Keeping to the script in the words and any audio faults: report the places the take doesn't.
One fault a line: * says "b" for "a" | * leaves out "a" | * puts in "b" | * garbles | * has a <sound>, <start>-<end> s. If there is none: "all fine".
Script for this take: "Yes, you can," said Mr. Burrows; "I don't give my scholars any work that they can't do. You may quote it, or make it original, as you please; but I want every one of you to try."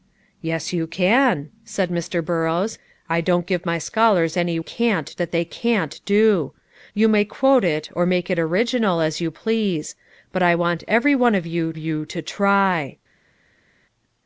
* says "can't" for "work"
* puts in "you"